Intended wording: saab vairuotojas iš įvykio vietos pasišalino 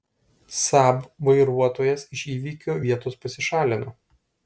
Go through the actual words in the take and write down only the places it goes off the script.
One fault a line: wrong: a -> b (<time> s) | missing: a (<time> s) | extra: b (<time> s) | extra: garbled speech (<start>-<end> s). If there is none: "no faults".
no faults